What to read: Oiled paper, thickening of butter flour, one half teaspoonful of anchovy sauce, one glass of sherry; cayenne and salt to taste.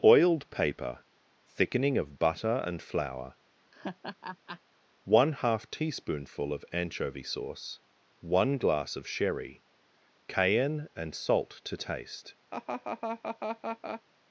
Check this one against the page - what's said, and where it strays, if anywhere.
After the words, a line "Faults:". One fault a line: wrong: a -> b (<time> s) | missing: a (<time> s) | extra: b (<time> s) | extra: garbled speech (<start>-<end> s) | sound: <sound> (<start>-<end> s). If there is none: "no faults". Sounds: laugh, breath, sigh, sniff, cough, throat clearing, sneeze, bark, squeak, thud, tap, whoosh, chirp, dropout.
Oiled paper, thickening of butter and flour, one half teaspoonful of anchovy sauce, one glass of sherry; cayenne and salt to taste.
Faults:
extra: and (2.6 s)
sound: laugh (3.7-4.6 s)
sound: laugh (12.5-14.0 s)